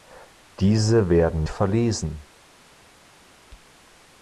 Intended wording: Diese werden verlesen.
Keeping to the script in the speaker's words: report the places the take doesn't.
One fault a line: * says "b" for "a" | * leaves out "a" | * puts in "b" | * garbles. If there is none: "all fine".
all fine